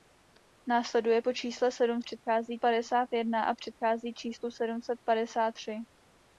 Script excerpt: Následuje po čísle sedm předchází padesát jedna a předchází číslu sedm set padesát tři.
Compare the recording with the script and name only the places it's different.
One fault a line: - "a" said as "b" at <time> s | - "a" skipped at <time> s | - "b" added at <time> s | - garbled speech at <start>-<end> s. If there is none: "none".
none